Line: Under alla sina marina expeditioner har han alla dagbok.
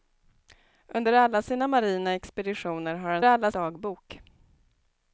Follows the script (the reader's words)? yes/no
yes